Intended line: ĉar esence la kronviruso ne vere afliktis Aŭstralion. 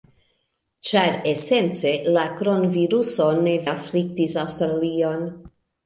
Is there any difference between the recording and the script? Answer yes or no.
yes